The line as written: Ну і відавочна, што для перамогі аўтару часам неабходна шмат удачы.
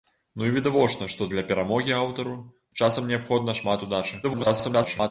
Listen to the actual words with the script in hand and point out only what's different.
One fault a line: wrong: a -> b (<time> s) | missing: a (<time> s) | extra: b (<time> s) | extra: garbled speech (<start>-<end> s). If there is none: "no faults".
extra: garbled speech (4.2-5.1 s)